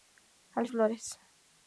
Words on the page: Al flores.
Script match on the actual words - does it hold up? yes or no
yes